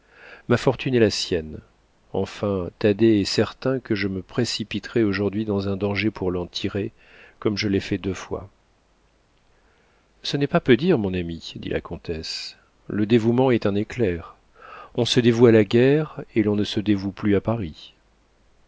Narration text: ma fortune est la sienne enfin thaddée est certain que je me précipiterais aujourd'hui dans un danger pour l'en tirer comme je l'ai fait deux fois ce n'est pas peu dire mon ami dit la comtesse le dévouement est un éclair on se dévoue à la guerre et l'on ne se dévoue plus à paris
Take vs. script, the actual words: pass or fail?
pass